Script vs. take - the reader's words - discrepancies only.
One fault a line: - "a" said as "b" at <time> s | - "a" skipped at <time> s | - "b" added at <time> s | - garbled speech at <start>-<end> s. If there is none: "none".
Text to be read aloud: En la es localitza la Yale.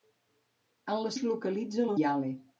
none